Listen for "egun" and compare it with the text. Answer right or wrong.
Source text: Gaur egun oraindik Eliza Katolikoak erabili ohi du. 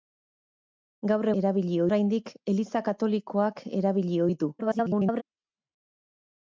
wrong